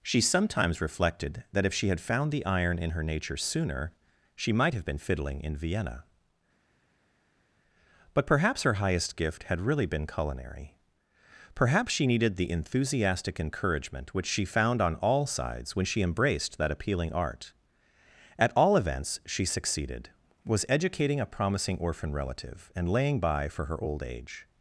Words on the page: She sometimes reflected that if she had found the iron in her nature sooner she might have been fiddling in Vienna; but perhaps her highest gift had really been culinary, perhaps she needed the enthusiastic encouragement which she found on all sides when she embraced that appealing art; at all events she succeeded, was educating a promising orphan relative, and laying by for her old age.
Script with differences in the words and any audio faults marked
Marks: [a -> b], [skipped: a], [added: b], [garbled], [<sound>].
She sometimes reflected that if she had found the iron in her nature sooner she might have been fiddling in Vienna; but perhaps her highest gift had really been culinary, perhaps she needed the enthusiastic encouragement which she found on all sides when she embraced that appealing art; at all events she succeeded, was educating a promising orphan relative, and laying by for her old age.